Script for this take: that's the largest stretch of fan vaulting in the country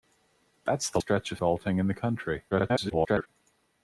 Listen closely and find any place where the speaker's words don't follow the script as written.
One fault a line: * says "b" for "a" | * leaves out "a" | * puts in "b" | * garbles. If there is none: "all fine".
* leaves out "largest"
* leaves out "fan"
* garbles